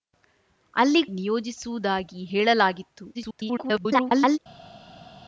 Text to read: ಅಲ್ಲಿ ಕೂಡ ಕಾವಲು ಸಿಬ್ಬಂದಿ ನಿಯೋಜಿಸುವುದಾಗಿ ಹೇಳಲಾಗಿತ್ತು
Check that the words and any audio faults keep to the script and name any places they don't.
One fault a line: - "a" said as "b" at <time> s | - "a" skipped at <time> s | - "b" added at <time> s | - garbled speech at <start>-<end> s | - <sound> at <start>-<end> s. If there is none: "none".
- "ಕೂಡ ಕಾವಲು ಸಿಬ್ಬಂದಿ" skipped at 1.0 s
- garbled speech at 3.1-4.4 s